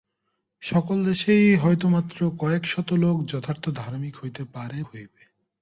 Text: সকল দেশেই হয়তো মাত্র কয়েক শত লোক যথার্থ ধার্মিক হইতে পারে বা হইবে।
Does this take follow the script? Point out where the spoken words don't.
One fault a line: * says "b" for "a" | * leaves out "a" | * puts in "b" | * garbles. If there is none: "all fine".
* leaves out "বা"